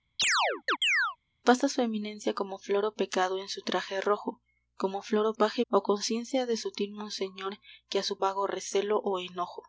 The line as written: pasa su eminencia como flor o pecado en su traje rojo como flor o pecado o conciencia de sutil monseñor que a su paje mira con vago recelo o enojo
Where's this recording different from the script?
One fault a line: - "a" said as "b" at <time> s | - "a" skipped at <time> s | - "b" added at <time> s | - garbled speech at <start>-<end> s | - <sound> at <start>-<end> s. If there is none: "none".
- chirp at 0.2-1.2 s
- "pecado" said as "paje" at 5.3 s
- "paje mira con" skipped at 8.2 s